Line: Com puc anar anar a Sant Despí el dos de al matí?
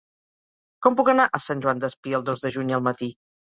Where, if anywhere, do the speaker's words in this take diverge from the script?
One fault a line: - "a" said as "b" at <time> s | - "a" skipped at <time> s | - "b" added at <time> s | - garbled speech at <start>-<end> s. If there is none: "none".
- "anar" skipped at 1.3 s
- "Joan" added at 1.7 s
- "juny" added at 2.6 s